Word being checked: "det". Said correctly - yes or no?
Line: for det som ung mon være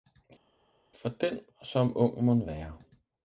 no